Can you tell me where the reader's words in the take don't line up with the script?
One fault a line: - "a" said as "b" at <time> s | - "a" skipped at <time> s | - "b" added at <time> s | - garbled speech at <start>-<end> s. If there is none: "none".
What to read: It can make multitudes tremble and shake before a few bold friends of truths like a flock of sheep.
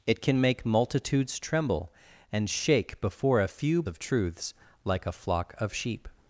- "bold friends" skipped at 3.8 s